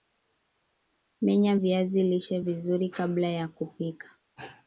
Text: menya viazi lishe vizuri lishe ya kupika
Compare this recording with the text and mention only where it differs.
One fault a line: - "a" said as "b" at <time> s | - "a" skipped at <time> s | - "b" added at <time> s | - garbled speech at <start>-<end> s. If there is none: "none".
- "lishe" said as "kabla" at 2.9 s